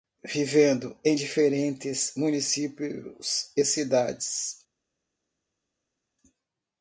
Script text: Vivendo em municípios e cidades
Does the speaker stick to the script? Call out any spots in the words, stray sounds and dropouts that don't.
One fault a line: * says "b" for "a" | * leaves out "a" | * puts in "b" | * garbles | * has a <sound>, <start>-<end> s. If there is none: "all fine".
* puts in "diferentes"